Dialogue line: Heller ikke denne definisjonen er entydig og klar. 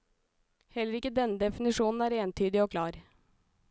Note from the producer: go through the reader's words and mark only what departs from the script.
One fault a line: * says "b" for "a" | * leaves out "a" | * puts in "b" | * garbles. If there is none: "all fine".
all fine